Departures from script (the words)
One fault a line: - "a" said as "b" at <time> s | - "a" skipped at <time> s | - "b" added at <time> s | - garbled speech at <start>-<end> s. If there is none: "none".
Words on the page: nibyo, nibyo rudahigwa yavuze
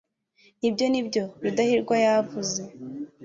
none